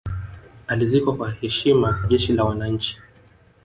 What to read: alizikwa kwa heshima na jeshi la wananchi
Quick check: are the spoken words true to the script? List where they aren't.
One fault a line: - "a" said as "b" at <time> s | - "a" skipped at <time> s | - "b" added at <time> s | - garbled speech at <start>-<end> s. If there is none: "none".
- "na" skipped at 2.0 s